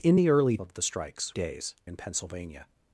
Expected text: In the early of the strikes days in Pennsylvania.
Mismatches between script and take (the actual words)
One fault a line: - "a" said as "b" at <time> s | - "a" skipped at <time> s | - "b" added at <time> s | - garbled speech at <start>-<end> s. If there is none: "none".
none